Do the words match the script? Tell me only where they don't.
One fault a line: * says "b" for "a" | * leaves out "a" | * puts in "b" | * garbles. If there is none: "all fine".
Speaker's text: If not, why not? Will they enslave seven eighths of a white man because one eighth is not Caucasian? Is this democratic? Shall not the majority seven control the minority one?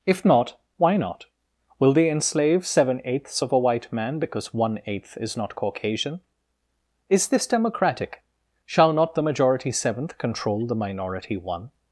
* says "seventh" for "seven"